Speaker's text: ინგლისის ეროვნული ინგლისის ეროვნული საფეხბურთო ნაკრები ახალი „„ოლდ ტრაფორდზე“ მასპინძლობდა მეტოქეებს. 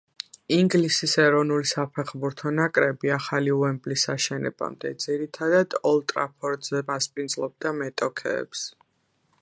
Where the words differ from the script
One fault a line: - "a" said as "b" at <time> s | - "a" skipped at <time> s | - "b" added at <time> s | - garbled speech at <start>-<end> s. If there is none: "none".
- "ინგლისის ეროვნული" skipped at 1.7 s
- "უემბლის აშენებამდე ძირითადად" added at 3.6 s